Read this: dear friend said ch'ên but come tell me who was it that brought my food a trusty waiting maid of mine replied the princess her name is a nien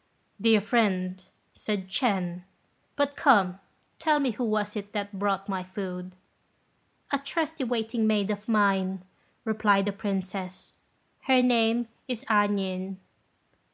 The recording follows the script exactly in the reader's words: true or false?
true